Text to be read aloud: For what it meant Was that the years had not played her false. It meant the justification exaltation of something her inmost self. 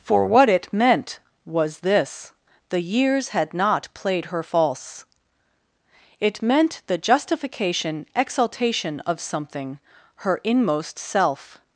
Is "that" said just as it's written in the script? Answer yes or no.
no